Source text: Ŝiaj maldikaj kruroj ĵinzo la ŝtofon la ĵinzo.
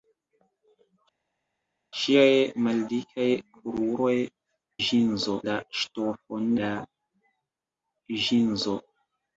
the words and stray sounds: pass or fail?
pass